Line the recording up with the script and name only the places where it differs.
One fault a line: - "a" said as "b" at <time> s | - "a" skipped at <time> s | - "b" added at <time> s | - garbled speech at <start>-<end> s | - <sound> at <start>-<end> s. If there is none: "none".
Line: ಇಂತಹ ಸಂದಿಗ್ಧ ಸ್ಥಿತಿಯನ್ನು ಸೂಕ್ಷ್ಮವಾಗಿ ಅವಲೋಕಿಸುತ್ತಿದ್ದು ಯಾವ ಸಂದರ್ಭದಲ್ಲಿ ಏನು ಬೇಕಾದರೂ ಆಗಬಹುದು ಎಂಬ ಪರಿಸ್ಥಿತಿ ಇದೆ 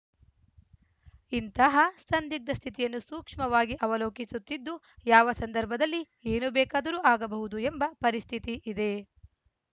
none